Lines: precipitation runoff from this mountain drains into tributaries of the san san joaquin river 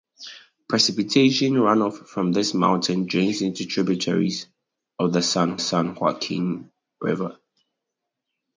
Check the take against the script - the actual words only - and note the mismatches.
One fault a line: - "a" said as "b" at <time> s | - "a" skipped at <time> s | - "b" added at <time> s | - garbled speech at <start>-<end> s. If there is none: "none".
none